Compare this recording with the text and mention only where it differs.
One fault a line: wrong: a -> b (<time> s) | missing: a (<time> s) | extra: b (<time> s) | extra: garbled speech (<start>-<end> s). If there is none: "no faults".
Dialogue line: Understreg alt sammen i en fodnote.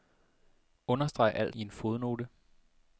missing: sammen (1.6 s)